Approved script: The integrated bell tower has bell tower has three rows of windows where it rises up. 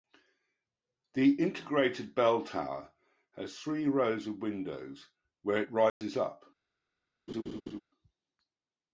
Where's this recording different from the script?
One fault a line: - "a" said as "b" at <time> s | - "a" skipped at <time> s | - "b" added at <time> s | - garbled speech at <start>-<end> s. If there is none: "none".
- "bell tower has" skipped at 3.6 s